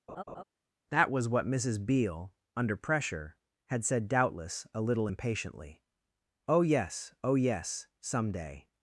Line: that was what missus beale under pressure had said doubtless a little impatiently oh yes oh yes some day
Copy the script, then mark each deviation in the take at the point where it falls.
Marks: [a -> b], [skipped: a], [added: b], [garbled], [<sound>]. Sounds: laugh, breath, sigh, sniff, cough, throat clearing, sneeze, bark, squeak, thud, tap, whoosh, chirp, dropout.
[laugh] that was what missus beale under pressure had said doubtless a little impatiently oh yes oh yes some day